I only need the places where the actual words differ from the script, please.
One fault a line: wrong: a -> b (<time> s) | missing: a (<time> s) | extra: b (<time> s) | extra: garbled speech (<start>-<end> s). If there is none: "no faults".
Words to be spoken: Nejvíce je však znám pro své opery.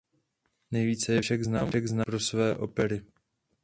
no faults